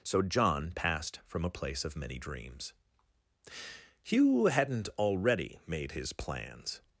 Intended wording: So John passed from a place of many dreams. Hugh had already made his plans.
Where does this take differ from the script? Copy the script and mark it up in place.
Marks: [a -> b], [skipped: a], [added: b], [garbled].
So John passed from a place of many dreams. Hugh [had -> hadn't] already made his plans.